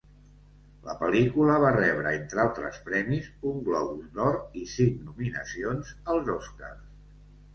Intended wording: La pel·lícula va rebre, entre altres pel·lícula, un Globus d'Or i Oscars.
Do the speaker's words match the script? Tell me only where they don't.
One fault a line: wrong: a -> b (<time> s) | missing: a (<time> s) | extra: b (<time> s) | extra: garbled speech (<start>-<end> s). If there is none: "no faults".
wrong: pel·lícula -> premis (2.9 s)
extra: cinc nominacions als (4.8 s)